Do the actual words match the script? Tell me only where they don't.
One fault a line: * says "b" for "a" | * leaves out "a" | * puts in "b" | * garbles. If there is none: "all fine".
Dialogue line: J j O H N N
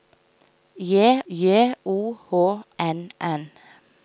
all fine